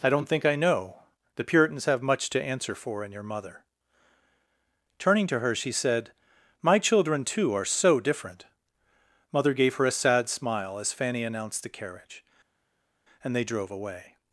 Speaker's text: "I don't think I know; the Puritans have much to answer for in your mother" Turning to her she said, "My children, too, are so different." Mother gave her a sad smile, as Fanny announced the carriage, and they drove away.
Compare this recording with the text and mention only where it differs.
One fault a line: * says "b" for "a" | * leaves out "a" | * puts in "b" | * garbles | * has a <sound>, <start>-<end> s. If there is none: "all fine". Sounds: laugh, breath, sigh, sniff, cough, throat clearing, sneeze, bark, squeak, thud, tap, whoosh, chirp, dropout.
all fine